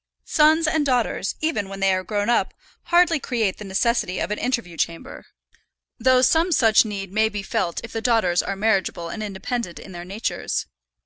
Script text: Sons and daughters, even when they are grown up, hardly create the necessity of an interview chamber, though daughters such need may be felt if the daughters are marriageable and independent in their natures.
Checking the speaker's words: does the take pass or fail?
fail